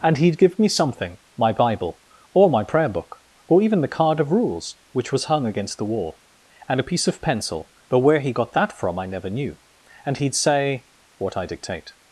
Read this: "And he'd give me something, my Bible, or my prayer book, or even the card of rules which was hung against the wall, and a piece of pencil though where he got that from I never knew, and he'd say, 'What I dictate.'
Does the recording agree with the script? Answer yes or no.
yes